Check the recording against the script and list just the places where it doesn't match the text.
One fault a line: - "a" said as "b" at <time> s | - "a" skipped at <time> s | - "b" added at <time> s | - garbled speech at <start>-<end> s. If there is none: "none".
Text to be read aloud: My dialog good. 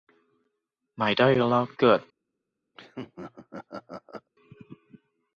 none